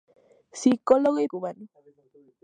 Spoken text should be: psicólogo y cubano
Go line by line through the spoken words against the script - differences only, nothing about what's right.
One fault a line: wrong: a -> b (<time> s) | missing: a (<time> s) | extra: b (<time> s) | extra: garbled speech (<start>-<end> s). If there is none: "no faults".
no faults